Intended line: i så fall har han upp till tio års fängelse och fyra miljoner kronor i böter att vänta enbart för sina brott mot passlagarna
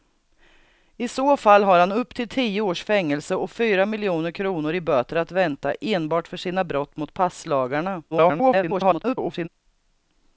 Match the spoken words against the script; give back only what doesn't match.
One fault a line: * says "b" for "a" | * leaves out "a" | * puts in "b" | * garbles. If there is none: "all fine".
* garbles